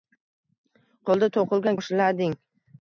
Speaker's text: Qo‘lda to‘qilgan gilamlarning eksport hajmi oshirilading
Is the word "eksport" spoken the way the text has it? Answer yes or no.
no